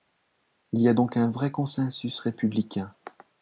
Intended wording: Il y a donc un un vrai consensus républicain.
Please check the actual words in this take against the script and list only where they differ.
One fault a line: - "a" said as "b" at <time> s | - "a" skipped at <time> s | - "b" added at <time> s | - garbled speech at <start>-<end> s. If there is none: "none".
- "un" skipped at 1.3 s